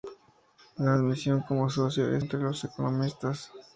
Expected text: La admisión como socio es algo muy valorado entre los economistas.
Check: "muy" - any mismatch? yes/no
yes